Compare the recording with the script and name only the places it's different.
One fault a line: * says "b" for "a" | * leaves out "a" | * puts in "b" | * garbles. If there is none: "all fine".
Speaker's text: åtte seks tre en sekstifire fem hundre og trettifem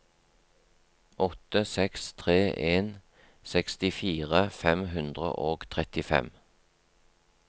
all fine